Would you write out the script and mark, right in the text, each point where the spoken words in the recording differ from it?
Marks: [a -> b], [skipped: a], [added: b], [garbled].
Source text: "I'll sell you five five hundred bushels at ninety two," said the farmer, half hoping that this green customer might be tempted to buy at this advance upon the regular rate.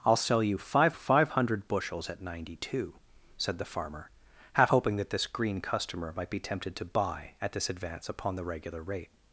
"I'll sell you five five hundred bushels at ninety two," said the farmer, half hoping that this green customer might be tempted to buy at this advance upon the regular rate.